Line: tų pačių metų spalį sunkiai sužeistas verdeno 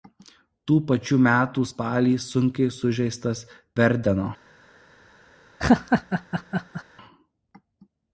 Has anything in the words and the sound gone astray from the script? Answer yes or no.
yes